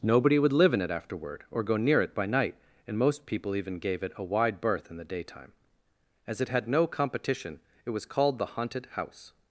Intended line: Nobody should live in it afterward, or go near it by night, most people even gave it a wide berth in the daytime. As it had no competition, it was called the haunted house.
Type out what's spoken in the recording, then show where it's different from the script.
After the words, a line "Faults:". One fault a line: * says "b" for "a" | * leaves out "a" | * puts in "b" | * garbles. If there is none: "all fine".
Nobody would live in it afterward, or go near it by night, and most people even gave it a wide berth in the daytime. As it had no competition, it was called the haunted house.
Faults:
* says "would" for "should"
* puts in "and"